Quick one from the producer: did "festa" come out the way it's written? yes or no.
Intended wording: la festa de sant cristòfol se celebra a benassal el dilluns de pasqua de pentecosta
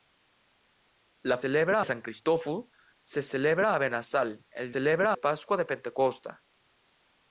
no